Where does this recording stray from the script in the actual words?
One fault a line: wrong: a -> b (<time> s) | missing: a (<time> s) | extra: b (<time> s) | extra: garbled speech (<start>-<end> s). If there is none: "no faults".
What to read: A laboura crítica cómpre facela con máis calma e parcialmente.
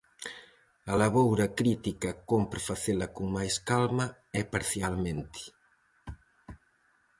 no faults